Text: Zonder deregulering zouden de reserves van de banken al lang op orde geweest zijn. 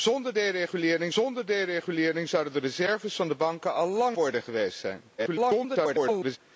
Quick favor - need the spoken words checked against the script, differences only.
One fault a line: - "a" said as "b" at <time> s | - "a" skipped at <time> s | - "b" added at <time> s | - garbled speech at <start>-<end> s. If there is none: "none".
- "zonder deregulering" added at 1.1 s
- "op" skipped at 4.2 s
- garbled speech at 5.2-6.4 s